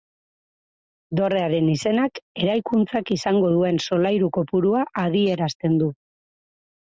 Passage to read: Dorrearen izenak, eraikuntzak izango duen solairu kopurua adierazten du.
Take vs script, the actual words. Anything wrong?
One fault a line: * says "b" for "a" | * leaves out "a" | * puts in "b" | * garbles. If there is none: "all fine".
all fine